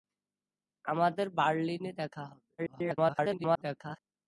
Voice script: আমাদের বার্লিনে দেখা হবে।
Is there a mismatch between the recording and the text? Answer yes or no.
yes